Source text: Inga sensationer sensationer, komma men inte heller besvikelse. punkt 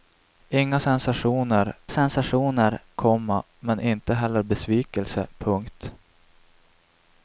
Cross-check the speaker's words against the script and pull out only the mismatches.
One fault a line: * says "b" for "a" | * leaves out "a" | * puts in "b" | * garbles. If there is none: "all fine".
all fine